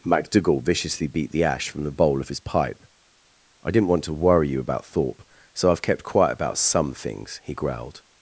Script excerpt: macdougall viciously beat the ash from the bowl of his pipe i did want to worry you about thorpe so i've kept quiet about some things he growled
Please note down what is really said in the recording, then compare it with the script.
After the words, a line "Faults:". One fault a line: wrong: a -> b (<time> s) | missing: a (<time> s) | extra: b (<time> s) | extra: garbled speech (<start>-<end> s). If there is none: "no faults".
macdougall viciously beat the ash from the bowl of his pipe i didn't want to worry you about thorpe so i've kept quiet about some things he growled
Faults:
wrong: did -> didn't (3.7 s)